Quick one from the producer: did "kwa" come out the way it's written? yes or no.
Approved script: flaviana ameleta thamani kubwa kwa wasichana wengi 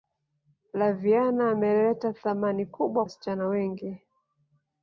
no